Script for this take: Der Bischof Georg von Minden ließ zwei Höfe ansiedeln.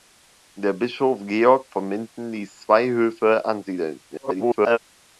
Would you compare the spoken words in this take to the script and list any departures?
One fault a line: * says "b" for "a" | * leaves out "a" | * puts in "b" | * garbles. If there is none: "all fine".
* garbles